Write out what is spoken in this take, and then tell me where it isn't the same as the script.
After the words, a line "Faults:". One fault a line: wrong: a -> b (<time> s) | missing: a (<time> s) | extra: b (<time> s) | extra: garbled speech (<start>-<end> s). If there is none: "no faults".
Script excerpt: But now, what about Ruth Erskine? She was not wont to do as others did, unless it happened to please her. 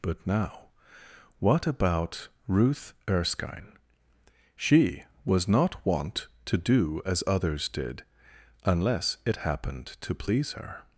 But now, what about Ruth Erskine? She was not wont to do as others did, unless it happened to please her.
Faults:
no faults